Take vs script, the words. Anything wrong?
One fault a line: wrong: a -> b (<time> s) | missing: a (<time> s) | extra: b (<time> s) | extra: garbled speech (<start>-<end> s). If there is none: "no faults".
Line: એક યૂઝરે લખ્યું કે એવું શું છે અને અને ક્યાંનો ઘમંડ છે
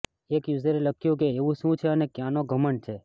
missing: અને (2.1 s)